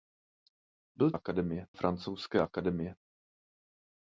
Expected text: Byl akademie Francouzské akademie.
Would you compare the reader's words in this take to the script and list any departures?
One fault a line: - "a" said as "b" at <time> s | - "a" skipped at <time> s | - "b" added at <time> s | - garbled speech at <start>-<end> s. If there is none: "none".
none